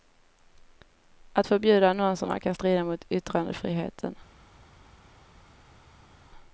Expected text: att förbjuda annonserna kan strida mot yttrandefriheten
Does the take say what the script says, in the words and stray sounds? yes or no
yes